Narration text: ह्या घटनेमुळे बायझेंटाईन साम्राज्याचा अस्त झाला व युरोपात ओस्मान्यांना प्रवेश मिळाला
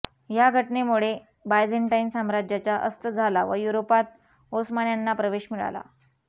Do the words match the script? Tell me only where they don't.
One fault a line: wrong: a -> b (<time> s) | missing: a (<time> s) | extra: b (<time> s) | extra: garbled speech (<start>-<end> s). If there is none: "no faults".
no faults